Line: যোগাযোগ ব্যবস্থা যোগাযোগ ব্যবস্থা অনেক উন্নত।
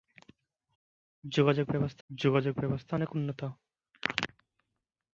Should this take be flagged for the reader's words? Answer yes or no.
no